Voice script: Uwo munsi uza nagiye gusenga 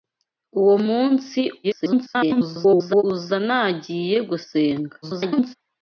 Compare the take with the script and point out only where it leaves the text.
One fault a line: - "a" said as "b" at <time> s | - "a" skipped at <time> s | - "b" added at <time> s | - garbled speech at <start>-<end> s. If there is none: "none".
- garbled speech at 1.6-3.0 s
- garbled speech at 5.0-5.6 s